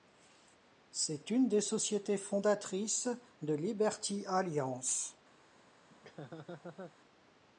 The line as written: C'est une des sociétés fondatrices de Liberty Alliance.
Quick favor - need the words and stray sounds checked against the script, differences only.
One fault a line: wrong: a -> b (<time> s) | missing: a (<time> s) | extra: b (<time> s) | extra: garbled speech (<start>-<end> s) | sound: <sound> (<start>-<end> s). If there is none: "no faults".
sound: laugh (5.9-7.0 s)